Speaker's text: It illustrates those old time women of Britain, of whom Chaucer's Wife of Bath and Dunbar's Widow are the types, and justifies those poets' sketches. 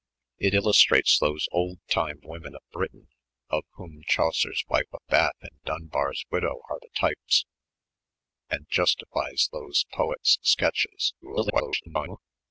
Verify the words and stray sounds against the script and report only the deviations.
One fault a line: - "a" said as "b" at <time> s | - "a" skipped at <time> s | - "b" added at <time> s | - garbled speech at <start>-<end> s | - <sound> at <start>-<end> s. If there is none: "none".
- garbled speech at 11.2-12.2 s